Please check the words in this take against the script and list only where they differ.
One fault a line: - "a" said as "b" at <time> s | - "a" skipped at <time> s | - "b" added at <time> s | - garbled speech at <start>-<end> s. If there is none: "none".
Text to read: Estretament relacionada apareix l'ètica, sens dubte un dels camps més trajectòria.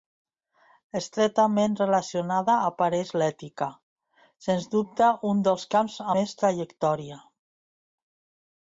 none